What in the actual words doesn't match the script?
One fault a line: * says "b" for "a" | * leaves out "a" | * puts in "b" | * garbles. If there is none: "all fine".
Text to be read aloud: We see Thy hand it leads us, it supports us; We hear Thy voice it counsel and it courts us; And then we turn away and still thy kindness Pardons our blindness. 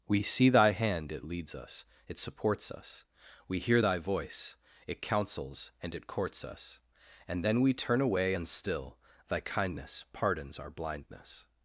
* says "counsels" for "counsel"